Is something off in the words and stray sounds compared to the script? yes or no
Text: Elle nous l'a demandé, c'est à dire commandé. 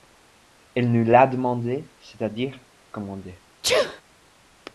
yes